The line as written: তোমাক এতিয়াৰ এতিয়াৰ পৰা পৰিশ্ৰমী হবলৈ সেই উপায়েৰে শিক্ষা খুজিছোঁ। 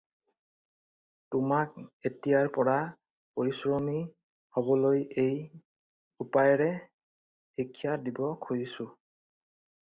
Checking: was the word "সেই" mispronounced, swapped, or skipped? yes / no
yes